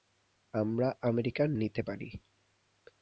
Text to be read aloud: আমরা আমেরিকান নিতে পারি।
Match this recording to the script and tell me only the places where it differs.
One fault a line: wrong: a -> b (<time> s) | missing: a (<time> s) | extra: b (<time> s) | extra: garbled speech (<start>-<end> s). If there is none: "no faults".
no faults